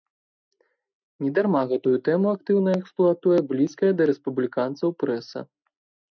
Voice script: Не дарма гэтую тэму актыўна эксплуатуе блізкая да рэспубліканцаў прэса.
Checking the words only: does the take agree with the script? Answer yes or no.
yes